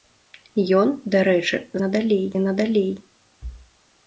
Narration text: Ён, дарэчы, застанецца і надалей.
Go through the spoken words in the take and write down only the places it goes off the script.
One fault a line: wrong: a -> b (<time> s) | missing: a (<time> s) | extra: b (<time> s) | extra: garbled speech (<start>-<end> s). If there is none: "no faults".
wrong: застанецца -> надалей (1.8 s)